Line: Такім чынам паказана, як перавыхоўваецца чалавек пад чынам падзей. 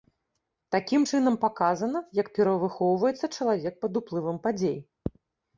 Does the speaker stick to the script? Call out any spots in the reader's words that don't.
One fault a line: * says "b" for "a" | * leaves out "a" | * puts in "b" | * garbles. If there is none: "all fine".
* says "уплывам" for "чынам"